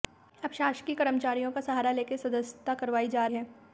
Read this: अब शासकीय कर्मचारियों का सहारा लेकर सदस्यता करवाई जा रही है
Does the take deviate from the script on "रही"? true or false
true